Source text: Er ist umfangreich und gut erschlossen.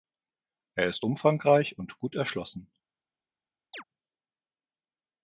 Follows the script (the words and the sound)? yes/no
no